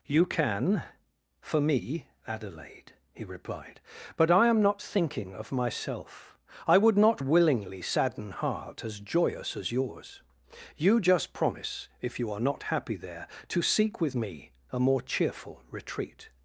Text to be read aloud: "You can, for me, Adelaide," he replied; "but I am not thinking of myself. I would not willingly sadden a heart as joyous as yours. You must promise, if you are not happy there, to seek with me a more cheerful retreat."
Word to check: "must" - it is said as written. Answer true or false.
false